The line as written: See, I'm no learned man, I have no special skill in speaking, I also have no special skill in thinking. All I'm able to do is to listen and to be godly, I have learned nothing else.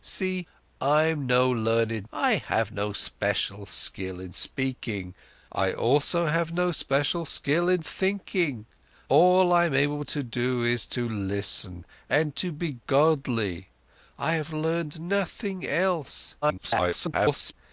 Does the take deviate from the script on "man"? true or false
true